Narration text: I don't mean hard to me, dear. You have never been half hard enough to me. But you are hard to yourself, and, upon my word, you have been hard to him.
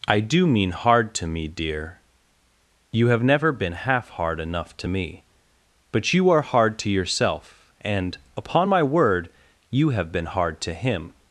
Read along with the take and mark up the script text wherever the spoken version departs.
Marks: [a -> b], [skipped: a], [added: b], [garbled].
I [don't -> do] mean hard to me, dear. You have never been half hard enough to me. But you are hard to yourself, and, upon my word, you have been hard to him.